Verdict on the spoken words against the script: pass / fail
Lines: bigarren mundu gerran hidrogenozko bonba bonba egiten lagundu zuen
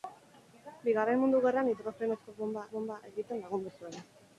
pass